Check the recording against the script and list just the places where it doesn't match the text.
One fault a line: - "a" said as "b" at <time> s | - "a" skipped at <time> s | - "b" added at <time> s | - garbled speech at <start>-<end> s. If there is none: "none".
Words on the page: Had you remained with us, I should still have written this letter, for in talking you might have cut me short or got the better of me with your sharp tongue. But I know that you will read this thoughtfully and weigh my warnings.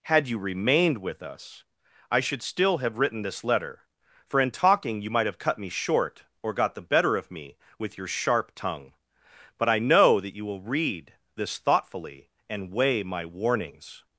none